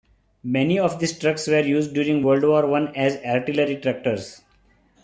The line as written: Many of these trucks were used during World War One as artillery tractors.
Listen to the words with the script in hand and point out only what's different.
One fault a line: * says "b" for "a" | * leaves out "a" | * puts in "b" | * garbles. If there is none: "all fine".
all fine